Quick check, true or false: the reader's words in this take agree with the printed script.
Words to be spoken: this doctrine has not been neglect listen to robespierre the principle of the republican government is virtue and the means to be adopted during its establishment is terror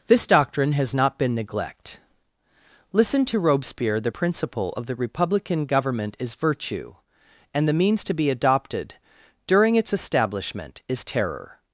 true